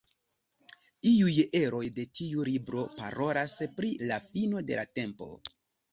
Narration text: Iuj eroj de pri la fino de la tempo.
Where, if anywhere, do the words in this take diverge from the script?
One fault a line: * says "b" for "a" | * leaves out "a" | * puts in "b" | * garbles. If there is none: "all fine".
* puts in "tiu libro parolas"